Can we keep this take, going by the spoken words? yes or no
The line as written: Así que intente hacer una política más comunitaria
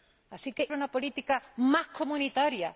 no